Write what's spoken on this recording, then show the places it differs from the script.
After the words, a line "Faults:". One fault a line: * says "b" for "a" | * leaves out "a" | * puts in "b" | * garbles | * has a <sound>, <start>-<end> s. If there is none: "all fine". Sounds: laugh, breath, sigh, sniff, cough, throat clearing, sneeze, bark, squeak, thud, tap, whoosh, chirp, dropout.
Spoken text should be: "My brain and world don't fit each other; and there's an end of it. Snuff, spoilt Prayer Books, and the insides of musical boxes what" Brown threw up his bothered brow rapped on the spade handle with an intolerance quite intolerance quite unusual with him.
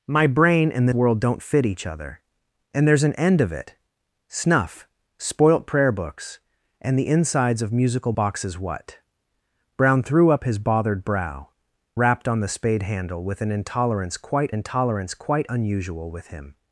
"My brain and world don't fit each other; and there's an end of it. Snuff, spoilt Prayer Books, and the insides of musical boxes what" Brown threw up his bothered brow rapped on the spade handle with an intolerance quite intolerance quite unusual with him.
Faults:
all fine